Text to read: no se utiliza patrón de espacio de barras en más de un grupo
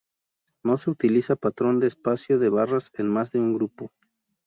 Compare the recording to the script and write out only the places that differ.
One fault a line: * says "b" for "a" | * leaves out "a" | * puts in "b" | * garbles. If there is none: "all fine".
all fine